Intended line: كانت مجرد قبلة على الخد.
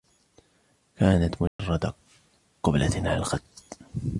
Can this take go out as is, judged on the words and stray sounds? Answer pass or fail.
fail